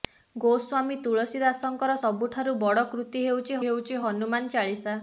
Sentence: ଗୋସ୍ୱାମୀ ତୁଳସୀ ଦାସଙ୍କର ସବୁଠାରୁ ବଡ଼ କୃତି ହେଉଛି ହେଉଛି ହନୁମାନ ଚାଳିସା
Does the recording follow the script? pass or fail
pass